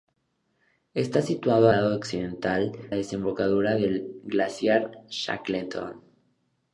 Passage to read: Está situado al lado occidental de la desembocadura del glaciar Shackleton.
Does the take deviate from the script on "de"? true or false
true